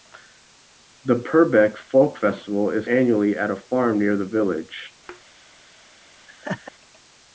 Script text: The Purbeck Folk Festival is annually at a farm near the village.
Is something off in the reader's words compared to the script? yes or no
no